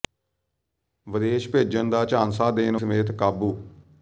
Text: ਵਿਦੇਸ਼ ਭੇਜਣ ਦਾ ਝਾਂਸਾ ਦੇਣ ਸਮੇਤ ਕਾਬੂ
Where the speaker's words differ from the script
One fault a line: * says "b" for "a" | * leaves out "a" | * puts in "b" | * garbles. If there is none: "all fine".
all fine